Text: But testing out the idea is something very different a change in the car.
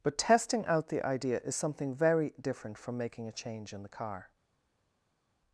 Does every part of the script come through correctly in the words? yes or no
no